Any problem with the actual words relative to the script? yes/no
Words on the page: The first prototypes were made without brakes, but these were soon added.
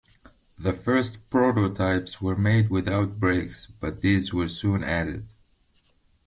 no